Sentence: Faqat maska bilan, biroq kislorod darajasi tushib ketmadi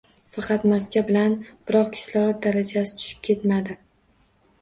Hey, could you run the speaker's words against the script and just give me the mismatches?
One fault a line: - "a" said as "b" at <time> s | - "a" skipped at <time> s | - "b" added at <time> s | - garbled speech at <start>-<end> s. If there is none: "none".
none